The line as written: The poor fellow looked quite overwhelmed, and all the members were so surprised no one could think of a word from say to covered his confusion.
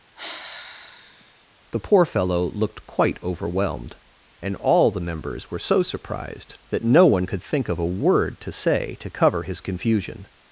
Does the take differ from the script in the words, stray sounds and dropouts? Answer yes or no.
yes